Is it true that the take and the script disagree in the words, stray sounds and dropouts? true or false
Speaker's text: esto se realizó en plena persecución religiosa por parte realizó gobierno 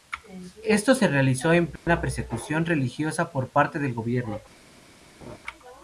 true